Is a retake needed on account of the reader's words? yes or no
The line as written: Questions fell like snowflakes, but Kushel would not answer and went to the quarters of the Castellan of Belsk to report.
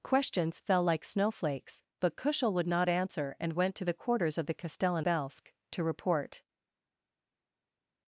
yes